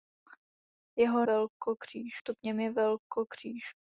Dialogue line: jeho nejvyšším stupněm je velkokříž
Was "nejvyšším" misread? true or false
true